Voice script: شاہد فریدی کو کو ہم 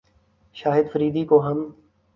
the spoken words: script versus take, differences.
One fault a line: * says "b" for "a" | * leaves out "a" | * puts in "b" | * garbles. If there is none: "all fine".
* leaves out "کو"